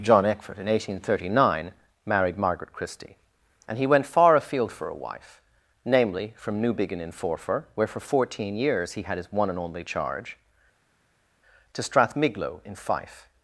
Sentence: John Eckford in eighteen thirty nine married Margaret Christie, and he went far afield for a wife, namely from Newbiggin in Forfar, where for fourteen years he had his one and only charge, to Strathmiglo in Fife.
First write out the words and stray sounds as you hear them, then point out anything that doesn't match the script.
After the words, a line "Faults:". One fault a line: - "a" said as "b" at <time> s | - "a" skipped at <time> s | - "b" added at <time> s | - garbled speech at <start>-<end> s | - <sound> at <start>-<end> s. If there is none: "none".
John Eckford in eighteen thirty nine married Margaret Christie, and he went far afield for a wife, namely from Newbiggin in Forfar, where for fourteen years he had his one and only charge, to Strathmiglo in Fife.
Faults:
none